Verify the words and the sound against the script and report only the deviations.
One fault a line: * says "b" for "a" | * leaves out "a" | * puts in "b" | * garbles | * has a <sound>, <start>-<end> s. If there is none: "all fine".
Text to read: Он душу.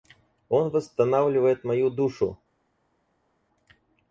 * puts in "восстанавливает мою"